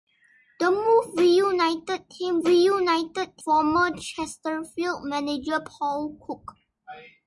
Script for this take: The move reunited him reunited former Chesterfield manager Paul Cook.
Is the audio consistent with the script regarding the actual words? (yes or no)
yes